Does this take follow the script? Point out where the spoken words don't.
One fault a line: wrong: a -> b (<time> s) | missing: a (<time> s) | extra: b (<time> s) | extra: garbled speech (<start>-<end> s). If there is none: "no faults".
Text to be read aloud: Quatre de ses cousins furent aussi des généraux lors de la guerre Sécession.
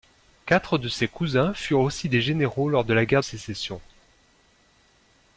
no faults